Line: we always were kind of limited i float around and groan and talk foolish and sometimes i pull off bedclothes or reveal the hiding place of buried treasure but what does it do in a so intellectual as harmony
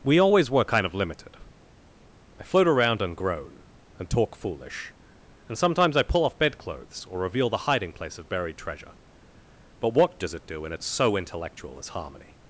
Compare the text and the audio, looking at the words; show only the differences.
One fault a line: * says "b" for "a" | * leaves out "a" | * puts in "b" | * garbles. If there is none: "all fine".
all fine